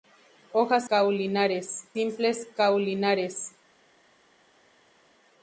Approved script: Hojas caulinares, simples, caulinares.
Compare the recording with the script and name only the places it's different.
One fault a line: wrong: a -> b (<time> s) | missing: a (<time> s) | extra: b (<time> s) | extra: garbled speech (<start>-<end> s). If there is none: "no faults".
no faults